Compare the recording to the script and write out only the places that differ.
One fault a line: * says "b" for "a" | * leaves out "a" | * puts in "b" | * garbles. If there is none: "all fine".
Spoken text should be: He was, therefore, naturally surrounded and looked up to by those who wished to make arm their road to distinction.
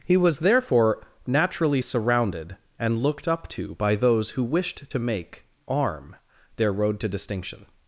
all fine